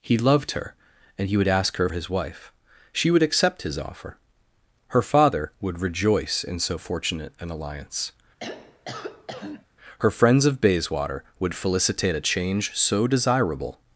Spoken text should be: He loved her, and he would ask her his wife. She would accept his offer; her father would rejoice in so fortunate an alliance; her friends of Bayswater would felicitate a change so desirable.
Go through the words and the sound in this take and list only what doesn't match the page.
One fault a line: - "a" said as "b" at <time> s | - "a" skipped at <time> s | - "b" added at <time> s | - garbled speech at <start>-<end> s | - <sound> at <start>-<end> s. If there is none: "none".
- throat clearing at 8.4-9.7 s